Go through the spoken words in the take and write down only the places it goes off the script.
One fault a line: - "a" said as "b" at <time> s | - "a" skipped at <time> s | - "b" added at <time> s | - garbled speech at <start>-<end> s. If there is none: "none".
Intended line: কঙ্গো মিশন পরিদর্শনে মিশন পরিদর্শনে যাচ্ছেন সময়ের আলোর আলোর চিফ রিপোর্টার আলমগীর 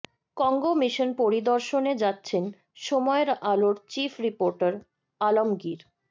- "মিশন পরিদর্শনে" skipped at 1.9 s
- "আলোর" skipped at 3.8 s